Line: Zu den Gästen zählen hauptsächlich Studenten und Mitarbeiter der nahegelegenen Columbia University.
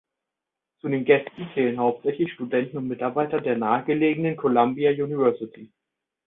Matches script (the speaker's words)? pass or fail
pass